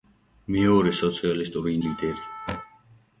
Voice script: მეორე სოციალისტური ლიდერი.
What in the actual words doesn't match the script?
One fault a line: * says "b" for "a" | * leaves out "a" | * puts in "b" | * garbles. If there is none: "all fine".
all fine